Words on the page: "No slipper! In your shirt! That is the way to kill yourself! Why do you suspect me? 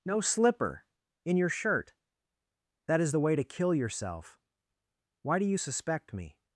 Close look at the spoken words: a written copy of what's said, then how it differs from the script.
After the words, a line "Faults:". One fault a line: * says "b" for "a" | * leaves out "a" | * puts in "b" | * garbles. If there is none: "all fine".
"No slipper! In your shirt! That is the way to kill yourself! Why do you suspect me?
Faults:
all fine